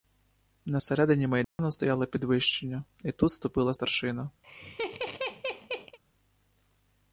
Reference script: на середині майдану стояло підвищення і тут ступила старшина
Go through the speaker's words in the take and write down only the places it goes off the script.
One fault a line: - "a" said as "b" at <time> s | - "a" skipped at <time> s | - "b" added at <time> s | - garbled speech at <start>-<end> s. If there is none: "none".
none